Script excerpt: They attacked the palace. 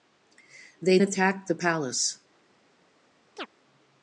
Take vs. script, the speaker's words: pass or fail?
pass